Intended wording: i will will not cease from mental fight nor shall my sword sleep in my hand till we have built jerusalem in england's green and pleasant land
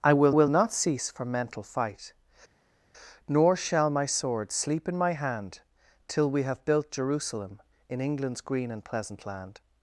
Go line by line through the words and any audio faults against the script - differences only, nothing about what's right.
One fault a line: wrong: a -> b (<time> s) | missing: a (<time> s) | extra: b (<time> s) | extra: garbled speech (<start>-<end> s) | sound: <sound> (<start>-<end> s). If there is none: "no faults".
no faults